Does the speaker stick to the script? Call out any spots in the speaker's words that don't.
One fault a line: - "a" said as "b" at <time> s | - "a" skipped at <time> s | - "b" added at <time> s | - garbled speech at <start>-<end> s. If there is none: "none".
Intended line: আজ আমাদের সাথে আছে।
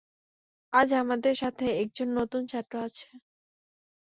- "একজন নতুন ছাত্র" added at 1.8 s